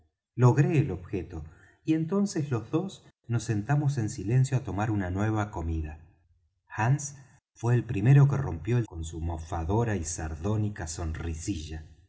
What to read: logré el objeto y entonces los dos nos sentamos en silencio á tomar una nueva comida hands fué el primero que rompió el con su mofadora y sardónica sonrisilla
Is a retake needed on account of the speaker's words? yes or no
no